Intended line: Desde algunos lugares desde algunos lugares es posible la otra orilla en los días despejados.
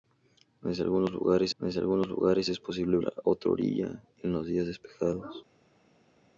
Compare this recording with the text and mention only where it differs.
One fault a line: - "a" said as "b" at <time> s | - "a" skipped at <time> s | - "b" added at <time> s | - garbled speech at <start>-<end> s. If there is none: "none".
none